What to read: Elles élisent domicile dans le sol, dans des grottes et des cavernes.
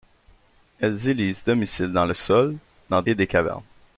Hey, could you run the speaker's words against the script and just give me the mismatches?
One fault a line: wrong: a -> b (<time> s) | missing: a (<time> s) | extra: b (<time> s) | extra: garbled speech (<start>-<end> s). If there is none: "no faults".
missing: des grottes (3.0 s)